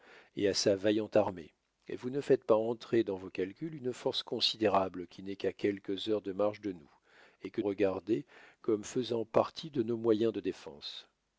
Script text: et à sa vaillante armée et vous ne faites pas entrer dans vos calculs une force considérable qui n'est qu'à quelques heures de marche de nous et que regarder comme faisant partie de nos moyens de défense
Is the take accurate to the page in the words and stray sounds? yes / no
yes